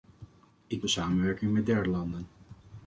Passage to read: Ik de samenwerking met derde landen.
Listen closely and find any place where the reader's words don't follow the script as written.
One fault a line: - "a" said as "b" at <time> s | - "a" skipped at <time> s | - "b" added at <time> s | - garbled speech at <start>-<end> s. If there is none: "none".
none